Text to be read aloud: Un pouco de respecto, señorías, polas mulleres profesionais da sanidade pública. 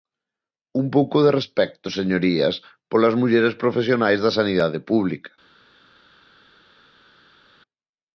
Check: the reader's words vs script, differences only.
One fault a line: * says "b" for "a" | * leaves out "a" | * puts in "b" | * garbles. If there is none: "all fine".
all fine